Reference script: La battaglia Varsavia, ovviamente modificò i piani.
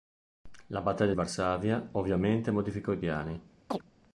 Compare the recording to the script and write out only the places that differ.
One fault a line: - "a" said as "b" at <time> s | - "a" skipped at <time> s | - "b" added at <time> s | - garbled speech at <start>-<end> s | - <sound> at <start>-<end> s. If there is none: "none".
- chirp at 3.7-3.8 s